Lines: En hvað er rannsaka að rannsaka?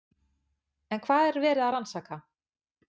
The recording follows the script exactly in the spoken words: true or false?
false